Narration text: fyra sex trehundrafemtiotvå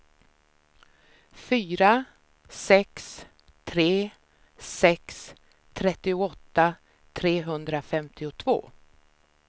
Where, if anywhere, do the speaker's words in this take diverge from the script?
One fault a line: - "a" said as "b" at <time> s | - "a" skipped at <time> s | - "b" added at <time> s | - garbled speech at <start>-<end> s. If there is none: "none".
- "tre sex trettioåtta" added at 3.6 s